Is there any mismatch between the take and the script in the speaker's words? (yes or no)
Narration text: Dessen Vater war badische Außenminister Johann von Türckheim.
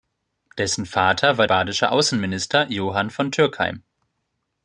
no